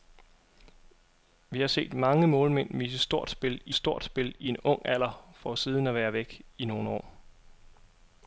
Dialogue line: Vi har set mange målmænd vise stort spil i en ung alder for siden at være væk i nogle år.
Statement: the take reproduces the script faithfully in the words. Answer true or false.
false